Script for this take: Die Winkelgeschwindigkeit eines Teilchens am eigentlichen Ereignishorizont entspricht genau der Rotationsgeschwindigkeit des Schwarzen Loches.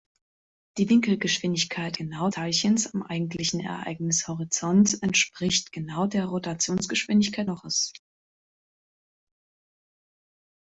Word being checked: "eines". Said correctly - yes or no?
no